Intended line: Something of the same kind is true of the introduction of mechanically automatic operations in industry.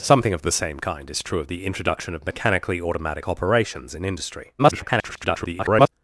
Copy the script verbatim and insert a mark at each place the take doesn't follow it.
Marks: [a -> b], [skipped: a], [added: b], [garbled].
Something of the same kind is true of the introduction of mechanically automatic operations in industry. [garbled]